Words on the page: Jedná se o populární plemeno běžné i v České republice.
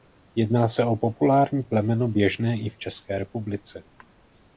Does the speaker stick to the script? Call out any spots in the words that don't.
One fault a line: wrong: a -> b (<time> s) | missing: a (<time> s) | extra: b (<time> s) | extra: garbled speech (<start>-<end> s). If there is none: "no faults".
no faults